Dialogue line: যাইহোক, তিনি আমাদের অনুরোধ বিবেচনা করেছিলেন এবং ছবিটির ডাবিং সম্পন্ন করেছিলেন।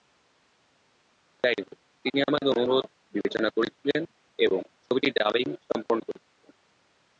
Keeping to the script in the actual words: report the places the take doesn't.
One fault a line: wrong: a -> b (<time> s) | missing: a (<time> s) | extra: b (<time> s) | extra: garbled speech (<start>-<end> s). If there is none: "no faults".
no faults